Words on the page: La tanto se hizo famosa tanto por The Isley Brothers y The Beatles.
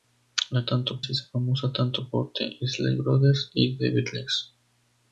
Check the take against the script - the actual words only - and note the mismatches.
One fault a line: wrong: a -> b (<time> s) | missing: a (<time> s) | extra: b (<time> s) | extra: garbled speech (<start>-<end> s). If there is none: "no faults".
no faults